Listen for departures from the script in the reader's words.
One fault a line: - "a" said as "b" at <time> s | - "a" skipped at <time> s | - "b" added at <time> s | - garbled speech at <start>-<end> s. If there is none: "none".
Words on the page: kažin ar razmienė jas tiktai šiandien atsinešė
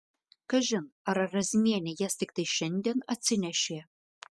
none